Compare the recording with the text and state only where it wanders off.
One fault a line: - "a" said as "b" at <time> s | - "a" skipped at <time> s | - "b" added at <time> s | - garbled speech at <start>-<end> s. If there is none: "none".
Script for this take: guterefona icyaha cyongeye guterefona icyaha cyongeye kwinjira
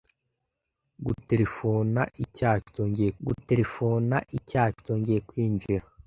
none